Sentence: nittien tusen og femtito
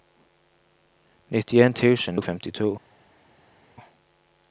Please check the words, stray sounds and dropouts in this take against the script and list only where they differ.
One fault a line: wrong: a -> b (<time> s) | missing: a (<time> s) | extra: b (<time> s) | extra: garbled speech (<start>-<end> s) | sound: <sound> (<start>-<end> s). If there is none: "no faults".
no faults